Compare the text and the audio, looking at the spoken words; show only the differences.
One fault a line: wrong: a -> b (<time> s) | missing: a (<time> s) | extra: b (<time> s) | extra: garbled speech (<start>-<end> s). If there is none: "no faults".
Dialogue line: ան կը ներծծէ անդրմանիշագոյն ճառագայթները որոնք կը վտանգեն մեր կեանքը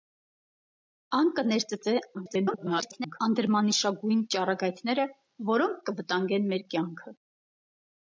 extra: garbled speech (2.1-3.2 s)